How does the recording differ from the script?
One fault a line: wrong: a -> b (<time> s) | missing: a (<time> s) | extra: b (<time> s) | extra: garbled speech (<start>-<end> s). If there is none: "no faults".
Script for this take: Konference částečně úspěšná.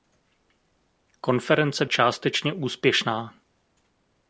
no faults